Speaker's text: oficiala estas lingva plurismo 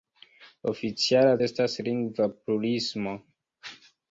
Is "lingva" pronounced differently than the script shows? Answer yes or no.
no